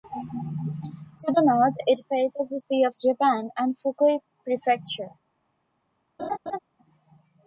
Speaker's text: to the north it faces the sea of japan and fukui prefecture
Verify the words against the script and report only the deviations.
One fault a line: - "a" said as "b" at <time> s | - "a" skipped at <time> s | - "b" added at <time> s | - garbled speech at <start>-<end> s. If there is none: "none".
none